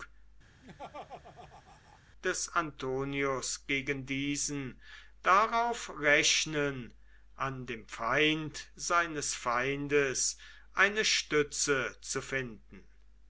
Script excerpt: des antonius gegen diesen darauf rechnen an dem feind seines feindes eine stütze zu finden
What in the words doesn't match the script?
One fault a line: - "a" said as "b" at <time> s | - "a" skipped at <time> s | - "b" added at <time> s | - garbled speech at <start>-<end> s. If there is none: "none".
none